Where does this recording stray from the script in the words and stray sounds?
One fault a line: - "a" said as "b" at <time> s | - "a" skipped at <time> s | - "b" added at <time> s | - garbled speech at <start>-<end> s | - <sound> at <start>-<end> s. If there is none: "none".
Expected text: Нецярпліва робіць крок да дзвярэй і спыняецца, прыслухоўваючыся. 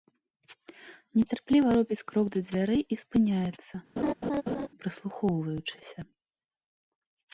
- laugh at 4.0-4.7 s